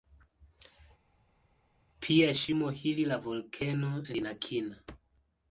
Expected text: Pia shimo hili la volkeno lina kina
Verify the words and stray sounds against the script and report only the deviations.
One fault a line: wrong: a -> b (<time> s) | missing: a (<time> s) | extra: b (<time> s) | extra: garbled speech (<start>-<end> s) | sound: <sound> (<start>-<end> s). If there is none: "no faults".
no faults